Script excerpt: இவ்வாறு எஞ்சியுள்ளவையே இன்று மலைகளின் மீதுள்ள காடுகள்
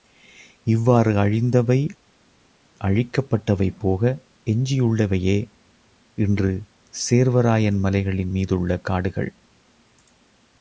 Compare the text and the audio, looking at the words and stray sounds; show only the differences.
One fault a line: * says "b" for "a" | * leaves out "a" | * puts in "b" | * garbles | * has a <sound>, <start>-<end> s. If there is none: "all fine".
* puts in "அழிந்தவை அழிக்கப்பட்டவை போக"
* puts in "சேர்வராயன்"